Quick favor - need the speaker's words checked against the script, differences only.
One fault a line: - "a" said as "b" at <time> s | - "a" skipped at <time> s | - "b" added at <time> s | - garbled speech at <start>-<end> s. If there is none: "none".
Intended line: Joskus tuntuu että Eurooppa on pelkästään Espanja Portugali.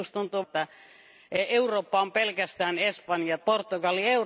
none